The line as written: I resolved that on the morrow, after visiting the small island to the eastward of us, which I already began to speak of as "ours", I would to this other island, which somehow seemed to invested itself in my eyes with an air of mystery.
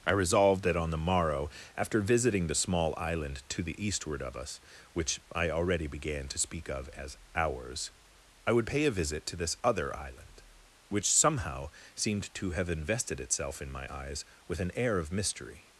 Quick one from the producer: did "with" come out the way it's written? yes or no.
yes